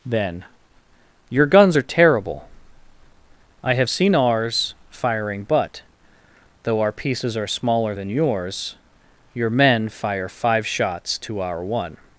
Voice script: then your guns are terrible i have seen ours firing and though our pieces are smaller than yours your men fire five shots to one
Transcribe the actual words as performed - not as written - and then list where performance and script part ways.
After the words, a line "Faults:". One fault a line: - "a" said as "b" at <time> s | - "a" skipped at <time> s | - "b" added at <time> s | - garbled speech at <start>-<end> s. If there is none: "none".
then your guns are terrible i have seen ours firing but though our pieces are smaller than yours your men fire five shots to our one
Faults:
- "and" said as "but" at 5.4 s
- "our" added at 11.4 s